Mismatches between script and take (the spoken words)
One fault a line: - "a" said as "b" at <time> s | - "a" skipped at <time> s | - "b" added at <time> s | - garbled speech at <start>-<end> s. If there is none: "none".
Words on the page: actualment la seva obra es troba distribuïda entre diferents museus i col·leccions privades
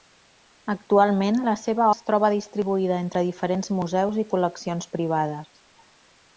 - "obra" skipped at 1.9 s